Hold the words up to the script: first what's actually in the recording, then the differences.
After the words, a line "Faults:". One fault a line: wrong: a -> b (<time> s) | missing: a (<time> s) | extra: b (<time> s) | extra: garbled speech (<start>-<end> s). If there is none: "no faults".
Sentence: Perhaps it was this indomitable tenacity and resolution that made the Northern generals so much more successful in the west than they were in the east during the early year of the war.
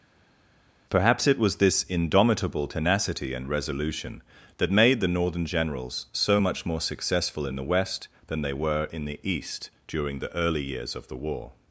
Perhaps it was this indomitable tenacity and resolution that made the Northern generals so much more successful in the west than they were in the east during the early years of the war.
Faults:
wrong: year -> years (10.6 s)